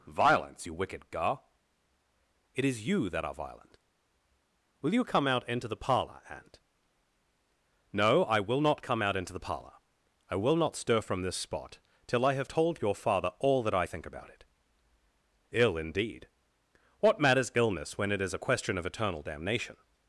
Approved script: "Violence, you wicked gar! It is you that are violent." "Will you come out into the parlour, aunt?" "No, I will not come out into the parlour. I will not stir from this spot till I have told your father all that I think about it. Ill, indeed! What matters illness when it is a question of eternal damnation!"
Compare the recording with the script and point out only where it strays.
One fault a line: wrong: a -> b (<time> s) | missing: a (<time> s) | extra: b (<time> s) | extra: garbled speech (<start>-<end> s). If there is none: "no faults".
no faults